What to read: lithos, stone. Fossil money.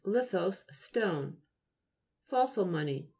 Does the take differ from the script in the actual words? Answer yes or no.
no